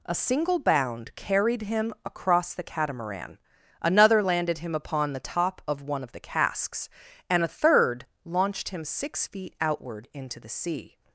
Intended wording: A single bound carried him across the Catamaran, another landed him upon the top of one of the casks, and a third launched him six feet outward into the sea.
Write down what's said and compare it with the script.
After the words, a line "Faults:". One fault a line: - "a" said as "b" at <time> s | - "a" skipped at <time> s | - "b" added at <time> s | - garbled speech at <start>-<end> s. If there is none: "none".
A single bound carried him across the Catamaran, another landed him upon the top of one of the casks, and a third launched him six feet outward into the sea.
Faults:
none